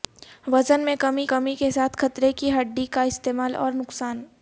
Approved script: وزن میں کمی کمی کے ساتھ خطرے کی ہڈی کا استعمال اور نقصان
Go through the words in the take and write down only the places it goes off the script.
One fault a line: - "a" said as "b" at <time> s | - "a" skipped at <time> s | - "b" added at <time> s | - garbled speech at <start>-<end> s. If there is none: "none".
none